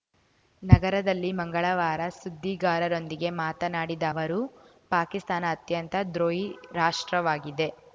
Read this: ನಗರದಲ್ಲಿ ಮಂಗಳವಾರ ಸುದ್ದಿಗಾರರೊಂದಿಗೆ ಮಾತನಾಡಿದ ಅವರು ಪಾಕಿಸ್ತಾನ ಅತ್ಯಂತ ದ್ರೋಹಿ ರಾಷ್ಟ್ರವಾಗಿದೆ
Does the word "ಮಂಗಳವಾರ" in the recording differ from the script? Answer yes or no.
no